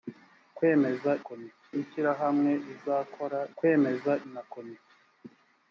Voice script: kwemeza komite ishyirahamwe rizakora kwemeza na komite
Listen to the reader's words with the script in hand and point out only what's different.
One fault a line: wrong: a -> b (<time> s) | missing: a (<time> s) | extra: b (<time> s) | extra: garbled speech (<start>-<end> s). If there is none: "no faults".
no faults